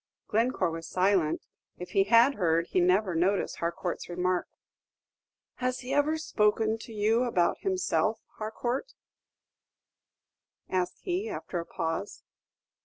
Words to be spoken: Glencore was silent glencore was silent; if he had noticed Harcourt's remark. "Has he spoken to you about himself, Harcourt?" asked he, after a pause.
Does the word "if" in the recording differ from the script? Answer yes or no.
yes